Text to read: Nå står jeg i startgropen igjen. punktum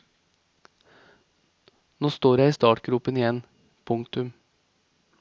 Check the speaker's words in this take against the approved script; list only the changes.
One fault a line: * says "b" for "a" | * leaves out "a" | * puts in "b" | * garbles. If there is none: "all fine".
all fine